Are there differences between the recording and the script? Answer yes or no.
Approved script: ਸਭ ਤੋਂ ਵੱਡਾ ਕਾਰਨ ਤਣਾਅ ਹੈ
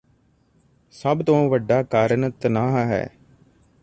no